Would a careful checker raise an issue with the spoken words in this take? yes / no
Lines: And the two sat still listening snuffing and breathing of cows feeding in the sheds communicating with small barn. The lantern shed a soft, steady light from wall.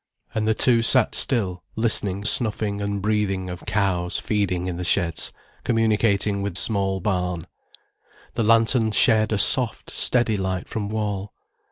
no